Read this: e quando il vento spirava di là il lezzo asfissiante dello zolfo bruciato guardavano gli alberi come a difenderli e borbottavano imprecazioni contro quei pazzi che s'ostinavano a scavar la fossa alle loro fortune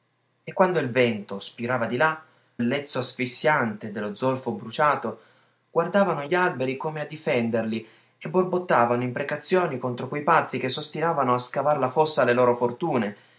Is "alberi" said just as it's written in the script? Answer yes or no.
yes